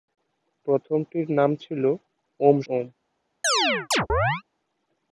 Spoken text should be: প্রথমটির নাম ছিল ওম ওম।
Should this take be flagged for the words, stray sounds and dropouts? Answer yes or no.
yes